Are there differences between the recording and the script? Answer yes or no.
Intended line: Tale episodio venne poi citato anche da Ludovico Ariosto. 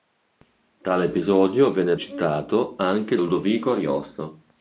yes